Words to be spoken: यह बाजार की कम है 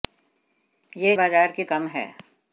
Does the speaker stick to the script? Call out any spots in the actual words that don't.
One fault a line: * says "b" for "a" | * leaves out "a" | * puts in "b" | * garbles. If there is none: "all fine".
all fine